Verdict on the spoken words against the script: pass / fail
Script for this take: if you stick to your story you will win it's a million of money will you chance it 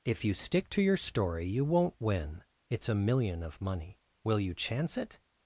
fail